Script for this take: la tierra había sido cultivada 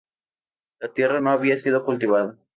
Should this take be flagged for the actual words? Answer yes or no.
yes